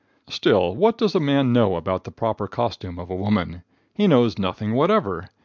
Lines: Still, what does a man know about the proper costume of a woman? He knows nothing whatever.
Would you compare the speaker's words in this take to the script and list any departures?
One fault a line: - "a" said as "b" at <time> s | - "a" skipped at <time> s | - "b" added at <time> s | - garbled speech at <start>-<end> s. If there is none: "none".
none